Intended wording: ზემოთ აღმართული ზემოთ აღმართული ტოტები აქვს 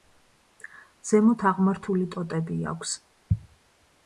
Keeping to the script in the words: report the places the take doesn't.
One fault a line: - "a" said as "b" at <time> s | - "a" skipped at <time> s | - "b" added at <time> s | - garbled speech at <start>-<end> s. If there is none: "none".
- "ზემოთ აღმართული" skipped at 2.1 s